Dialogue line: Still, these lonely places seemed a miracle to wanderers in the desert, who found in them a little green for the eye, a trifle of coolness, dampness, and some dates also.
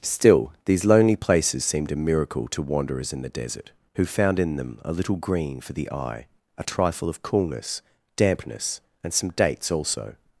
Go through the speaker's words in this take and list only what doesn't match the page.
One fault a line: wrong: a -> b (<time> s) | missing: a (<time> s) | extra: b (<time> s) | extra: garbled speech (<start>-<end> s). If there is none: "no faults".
no faults